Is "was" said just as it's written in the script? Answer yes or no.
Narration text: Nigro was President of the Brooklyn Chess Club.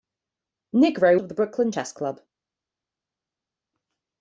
no